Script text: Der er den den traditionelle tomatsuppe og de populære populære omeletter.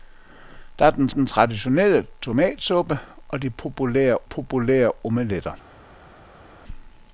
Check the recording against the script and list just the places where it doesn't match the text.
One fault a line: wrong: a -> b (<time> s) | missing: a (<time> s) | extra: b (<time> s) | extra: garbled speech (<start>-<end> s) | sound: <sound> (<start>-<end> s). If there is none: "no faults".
no faults